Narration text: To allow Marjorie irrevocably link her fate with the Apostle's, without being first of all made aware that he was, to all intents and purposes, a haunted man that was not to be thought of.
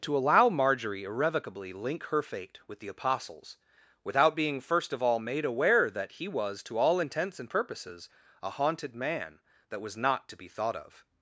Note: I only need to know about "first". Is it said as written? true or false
true